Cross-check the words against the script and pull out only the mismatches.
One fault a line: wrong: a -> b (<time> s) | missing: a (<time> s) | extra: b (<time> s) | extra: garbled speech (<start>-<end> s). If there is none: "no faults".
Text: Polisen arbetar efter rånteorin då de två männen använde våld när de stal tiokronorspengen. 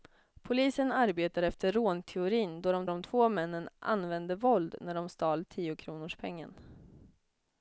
extra: de (2.9 s)